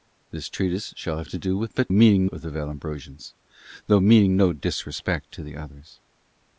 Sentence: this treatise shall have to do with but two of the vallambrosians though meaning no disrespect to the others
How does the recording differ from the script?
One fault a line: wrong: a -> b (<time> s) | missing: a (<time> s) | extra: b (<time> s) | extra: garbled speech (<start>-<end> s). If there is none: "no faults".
wrong: two -> meaning (1.9 s)